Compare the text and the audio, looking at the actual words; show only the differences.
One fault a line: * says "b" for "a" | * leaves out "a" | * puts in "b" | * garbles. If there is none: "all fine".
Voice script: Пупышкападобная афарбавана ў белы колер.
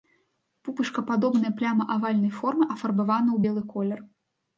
* puts in "пляма авальнай формы"